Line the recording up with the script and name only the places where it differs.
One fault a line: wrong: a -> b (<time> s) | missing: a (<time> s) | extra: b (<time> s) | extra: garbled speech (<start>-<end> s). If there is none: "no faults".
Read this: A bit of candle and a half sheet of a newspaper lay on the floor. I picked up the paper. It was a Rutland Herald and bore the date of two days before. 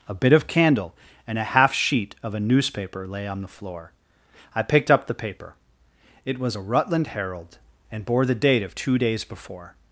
no faults